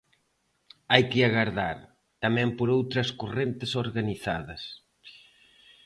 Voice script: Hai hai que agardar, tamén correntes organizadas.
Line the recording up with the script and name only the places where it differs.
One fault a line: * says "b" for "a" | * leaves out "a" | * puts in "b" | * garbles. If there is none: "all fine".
* leaves out "hai"
* puts in "por outras"